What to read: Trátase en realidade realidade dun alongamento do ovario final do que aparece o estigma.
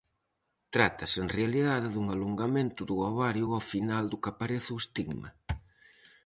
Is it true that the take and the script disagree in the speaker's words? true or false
true